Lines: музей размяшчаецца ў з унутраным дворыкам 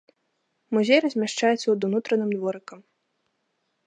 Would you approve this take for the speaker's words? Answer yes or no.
yes